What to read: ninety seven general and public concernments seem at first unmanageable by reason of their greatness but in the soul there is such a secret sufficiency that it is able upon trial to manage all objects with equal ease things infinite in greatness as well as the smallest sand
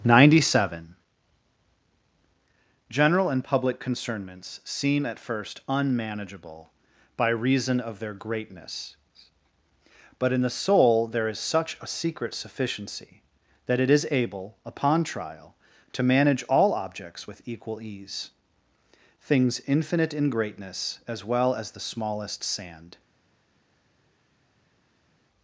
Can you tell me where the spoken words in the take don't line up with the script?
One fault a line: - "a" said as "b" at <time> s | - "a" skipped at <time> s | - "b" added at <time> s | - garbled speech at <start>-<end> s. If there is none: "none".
none